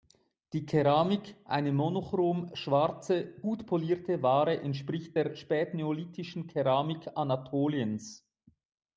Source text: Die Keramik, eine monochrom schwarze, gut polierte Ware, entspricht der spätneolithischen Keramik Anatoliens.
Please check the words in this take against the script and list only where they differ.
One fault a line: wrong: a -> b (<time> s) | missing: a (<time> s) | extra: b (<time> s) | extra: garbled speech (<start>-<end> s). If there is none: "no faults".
no faults